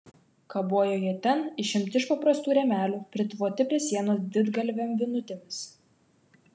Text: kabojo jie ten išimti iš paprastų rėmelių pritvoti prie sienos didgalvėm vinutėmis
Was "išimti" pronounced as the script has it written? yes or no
yes